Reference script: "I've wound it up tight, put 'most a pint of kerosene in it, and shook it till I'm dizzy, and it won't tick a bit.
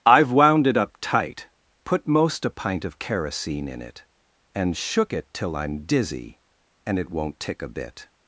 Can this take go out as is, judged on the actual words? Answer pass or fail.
pass